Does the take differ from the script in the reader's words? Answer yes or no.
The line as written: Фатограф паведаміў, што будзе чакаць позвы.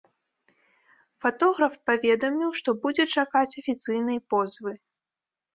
yes